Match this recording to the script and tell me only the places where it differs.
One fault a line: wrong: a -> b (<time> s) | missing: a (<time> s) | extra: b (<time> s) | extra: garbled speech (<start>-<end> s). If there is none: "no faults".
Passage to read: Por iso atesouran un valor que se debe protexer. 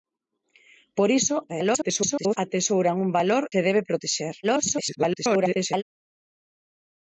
extra: garbled speech (1.5-2.4 s)
missing: que (3.4 s)
extra: garbled speech (4.4-5.8 s)